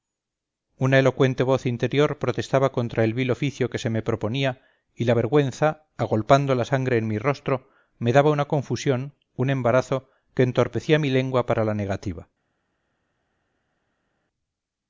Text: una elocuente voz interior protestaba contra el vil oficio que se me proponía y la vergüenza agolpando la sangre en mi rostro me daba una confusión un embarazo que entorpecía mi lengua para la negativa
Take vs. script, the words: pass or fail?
pass